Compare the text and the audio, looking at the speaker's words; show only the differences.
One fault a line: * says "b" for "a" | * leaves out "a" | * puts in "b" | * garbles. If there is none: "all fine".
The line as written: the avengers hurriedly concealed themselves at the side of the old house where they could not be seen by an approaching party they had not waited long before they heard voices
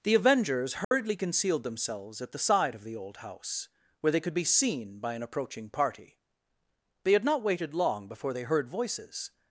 * leaves out "not"